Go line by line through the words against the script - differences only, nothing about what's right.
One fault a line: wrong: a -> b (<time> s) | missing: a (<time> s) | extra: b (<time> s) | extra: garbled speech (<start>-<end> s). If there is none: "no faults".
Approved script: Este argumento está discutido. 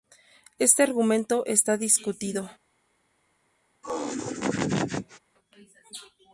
no faults